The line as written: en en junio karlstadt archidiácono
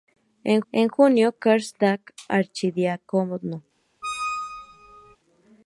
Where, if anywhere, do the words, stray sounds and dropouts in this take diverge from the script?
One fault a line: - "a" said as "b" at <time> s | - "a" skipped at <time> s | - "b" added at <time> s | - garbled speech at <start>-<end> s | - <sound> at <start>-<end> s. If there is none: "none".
- squeak at 4.0-5.2 s